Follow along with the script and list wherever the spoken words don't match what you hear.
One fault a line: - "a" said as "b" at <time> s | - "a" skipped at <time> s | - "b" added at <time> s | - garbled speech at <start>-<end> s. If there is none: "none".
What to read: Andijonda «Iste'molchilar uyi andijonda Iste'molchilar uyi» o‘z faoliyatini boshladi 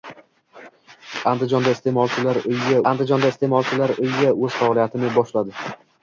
none